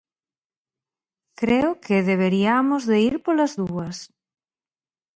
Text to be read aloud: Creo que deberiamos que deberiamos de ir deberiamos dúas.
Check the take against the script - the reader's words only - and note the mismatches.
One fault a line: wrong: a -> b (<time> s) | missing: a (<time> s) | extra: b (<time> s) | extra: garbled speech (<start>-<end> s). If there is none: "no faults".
missing: que deberiamos (2.8 s)
wrong: deberiamos -> polas (3.2 s)